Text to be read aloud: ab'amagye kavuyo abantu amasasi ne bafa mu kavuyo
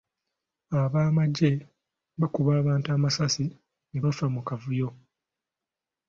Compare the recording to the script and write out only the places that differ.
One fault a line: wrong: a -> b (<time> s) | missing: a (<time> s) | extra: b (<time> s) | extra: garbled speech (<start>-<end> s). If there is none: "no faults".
wrong: kavuyo -> bakuba (2.2 s)